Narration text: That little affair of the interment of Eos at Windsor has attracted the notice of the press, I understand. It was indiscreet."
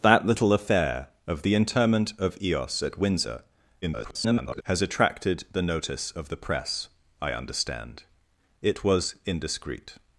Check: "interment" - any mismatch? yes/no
no